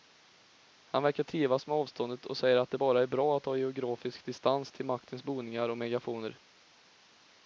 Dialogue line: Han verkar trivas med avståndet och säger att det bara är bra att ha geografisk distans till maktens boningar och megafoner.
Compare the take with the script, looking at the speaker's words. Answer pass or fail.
pass